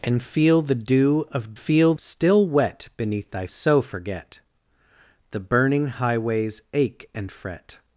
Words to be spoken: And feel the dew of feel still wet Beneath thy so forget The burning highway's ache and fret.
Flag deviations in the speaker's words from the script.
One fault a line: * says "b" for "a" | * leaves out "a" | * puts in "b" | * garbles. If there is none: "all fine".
all fine